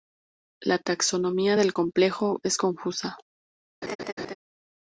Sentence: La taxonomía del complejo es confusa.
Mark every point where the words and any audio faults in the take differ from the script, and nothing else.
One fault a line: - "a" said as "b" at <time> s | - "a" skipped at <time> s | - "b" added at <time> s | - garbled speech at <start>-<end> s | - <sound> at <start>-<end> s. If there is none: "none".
- laugh at 3.8-4.3 s